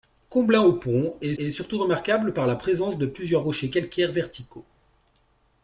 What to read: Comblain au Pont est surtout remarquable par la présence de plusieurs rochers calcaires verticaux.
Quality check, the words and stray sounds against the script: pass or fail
fail